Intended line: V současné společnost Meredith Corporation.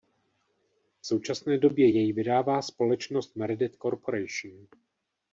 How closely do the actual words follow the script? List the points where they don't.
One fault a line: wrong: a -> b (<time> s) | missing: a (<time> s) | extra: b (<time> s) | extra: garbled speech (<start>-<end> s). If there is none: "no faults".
extra: době jej vydává (1.6 s)